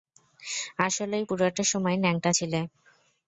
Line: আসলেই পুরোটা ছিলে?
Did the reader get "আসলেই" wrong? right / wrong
right